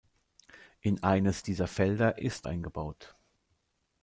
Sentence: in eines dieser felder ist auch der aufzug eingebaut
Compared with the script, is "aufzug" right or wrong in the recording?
wrong